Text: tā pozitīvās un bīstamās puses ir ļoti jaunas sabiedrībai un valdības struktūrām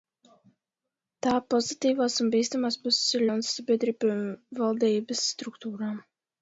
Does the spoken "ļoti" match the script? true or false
false